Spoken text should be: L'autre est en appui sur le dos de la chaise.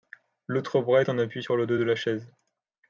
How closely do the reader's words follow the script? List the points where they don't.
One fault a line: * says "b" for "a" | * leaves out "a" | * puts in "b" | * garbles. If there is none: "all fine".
* puts in "bras"